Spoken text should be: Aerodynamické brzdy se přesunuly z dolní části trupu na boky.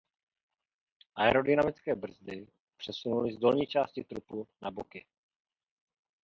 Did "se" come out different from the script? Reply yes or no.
yes